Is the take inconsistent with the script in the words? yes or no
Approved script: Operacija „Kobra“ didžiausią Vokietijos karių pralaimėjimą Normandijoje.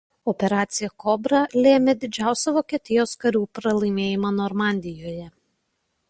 yes